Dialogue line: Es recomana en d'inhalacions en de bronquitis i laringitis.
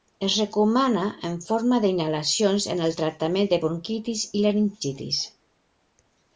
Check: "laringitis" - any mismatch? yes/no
no